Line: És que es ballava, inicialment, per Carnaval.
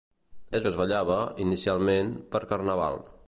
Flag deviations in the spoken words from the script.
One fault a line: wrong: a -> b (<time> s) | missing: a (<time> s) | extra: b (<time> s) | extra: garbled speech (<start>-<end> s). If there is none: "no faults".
no faults